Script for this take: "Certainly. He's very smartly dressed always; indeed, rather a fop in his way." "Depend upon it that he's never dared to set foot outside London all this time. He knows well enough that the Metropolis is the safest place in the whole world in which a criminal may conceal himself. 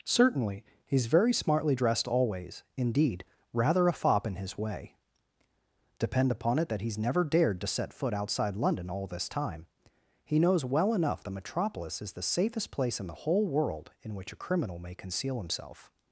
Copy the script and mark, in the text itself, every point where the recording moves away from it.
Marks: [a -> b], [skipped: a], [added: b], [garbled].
"Certainly. He's very smartly dressed always; indeed, rather a fop in his way." "Depend upon it that he's never dared to set foot outside London all this time. He knows well enough [skipped: that] the Metropolis is the safest place in the whole world in which a criminal may conceal himself.